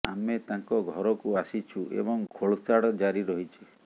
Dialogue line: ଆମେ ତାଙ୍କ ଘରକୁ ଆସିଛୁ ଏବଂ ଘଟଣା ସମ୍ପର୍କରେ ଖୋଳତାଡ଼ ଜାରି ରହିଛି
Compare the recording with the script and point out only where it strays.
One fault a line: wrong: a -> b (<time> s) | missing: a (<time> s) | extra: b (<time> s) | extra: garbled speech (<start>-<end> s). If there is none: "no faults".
missing: ଘଟଣା ସମ୍ପର୍କରେ (2.2 s)